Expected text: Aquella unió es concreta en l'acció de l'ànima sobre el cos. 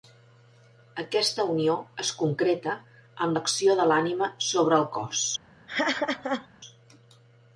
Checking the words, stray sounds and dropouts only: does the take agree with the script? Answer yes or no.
no